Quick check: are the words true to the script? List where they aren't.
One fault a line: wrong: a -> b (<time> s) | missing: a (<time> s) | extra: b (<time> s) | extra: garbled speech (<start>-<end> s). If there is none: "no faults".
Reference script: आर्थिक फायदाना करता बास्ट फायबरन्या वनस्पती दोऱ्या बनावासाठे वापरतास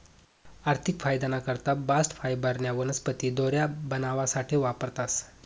no faults